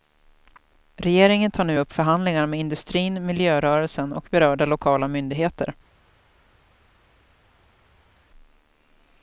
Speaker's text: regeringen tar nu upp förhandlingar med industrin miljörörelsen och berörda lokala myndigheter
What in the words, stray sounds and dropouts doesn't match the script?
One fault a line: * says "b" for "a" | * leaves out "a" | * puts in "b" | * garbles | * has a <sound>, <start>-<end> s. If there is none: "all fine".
all fine